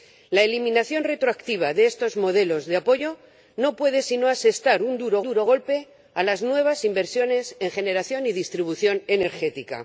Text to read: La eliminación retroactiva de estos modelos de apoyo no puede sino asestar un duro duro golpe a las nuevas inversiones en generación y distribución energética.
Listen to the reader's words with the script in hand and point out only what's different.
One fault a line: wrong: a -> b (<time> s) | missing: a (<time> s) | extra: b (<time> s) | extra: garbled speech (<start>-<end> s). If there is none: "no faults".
no faults